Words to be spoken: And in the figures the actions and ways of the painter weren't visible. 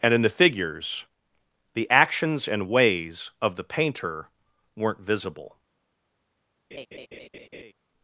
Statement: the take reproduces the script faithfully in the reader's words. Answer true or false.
true